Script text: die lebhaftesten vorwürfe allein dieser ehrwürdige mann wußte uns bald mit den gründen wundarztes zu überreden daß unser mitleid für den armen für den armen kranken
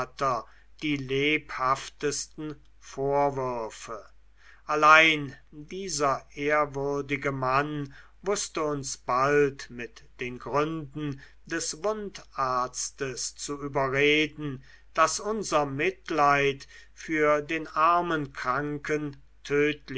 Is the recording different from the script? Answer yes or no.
yes